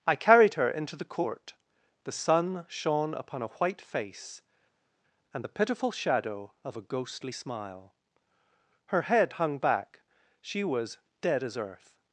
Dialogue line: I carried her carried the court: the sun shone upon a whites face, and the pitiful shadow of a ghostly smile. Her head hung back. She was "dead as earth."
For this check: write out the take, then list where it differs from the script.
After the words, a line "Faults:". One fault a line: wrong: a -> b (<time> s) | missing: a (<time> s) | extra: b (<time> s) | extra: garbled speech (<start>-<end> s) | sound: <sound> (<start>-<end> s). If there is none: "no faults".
I carried her into the court: the sun shone upon a white face, and the pitiful shadow of a ghostly smile. Her head hung back. She was "dead as earth."
Faults:
wrong: carried -> into (0.7 s)
wrong: whites -> white (3.6 s)